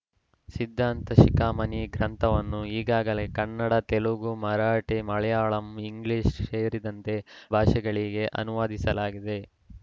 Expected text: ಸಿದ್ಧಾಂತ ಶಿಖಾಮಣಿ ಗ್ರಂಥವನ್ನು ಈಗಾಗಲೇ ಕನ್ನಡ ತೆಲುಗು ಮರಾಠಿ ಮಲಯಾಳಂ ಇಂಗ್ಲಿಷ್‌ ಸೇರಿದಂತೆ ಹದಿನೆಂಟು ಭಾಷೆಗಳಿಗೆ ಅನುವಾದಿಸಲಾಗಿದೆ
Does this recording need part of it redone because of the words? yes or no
yes